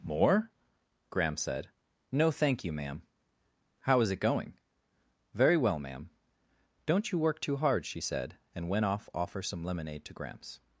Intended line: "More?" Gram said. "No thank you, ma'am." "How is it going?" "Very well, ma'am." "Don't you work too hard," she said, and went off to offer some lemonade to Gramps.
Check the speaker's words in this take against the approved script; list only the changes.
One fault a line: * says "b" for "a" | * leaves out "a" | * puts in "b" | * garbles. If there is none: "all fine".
* leaves out "to"